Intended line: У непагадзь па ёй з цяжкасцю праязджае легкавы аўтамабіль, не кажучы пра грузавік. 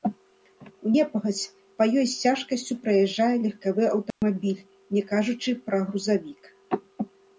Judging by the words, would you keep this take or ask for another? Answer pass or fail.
pass